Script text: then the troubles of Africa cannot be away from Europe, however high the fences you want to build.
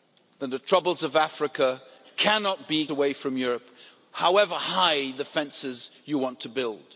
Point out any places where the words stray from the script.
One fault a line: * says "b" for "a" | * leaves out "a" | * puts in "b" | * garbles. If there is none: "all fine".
all fine